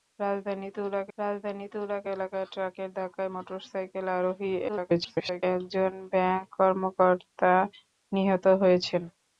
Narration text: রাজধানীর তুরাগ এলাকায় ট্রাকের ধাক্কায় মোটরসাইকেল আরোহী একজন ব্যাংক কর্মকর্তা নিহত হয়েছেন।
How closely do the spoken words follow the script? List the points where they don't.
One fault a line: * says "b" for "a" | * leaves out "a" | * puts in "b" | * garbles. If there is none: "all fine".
* puts in "রাজধানীর তুরাগ"
* garbles